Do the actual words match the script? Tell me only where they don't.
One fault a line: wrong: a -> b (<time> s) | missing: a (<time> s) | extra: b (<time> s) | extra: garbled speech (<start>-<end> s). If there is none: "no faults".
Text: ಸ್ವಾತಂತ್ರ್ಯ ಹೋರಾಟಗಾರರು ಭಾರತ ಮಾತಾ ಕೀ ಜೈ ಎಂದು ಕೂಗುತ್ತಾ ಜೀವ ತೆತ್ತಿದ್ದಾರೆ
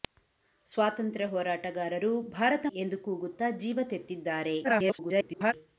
missing: ಮಾತಾ ಕೀ ಜೈ (2.7 s)
extra: garbled speech (4.6-5.5 s)